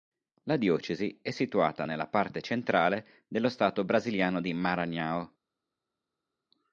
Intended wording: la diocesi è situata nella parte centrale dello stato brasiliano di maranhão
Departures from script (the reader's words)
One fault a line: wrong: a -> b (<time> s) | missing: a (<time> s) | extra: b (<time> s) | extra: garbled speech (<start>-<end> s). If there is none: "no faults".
no faults